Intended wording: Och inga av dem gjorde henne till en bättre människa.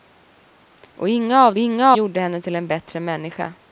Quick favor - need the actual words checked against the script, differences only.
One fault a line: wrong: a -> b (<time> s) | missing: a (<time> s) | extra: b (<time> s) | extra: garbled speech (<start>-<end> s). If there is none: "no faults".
wrong: dem -> inga (1.6 s)